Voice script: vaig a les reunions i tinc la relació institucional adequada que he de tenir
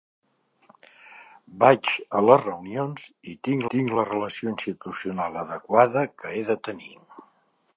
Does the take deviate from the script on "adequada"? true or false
false